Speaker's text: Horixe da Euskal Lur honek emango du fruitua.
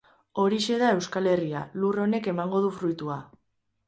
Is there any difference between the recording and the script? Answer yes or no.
yes